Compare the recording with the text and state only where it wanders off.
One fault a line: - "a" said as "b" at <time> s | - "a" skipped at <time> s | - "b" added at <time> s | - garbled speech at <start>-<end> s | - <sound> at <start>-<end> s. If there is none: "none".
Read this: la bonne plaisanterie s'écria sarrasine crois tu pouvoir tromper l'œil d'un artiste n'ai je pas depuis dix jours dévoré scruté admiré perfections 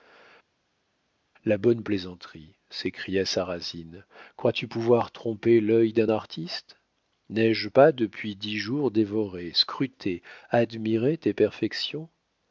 - "tes" added at 11.2 s